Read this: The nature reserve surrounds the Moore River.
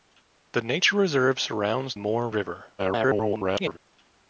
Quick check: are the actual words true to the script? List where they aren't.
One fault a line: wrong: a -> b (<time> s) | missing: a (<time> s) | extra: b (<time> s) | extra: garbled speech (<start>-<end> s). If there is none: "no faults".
missing: the (1.9 s)
extra: garbled speech (2.8-3.8 s)